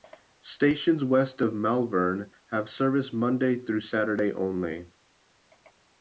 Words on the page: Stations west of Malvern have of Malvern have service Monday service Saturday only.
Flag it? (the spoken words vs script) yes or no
yes